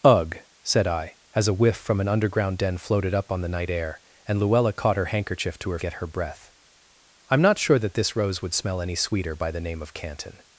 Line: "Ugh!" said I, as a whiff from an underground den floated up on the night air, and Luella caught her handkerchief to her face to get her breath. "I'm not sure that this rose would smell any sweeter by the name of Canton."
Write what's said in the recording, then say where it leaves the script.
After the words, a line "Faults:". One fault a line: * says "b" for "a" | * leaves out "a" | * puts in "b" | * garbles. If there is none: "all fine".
"Ugh!" said I, as a whiff from an underground den floated up on the night air, and Luella caught her handkerchief to her get her breath. "I'm not sure that this rose would smell any sweeter by the name of Canton."
Faults:
* leaves out "face to"